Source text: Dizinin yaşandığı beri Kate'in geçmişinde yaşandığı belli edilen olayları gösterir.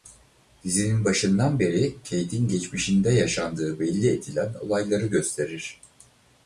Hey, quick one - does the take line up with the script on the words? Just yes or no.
no